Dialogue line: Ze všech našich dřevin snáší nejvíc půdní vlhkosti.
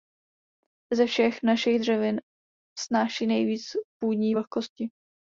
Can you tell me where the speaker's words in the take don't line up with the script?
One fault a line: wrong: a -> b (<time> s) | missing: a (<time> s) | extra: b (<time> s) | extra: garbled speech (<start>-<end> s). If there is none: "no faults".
no faults